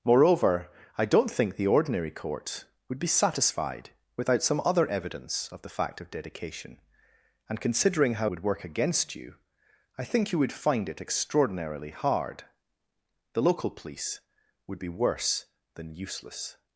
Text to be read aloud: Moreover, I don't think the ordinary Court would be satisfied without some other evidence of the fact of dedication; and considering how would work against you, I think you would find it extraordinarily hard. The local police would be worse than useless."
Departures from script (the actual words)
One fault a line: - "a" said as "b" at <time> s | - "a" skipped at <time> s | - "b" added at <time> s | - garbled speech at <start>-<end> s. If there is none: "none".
none